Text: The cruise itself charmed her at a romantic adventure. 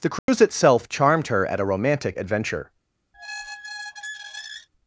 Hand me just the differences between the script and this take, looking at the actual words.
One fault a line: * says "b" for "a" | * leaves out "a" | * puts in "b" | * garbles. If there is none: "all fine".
all fine